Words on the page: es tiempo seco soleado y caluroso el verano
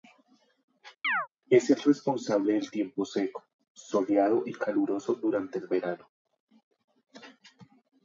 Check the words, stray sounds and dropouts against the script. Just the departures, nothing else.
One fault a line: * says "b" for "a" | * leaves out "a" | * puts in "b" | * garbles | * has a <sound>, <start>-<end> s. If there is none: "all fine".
* has a chirp, 1.0-1.3 s
* puts in "el responsable del"
* puts in "durante"